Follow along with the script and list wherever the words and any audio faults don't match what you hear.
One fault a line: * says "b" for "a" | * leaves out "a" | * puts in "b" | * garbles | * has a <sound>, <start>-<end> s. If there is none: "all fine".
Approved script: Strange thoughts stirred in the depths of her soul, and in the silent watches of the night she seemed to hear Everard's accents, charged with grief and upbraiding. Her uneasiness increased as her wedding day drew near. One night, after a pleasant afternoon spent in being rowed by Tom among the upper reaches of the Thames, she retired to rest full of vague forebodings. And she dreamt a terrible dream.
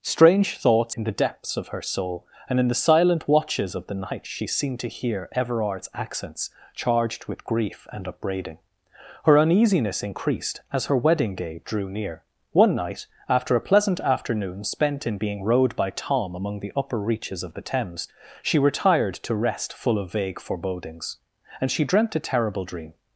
* leaves out "stirred"